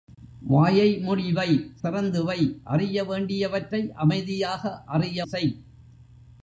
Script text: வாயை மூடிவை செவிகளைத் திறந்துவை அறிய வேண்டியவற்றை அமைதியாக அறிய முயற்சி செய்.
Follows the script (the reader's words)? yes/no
no